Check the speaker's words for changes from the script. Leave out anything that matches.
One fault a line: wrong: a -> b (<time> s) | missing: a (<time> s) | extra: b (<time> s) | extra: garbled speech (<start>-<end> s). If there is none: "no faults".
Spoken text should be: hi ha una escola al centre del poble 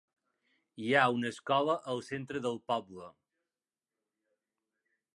no faults